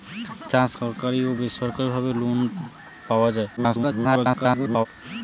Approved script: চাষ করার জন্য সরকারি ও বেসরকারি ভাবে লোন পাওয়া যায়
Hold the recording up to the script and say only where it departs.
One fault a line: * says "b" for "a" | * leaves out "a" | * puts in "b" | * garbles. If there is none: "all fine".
* leaves out "করার জন্য"
* garbles